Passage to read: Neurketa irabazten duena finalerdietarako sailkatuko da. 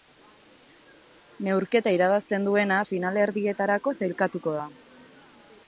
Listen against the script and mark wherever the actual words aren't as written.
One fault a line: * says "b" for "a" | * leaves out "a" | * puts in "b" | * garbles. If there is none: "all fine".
all fine